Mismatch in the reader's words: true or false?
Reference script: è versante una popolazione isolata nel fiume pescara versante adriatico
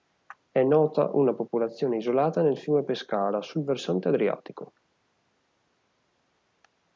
true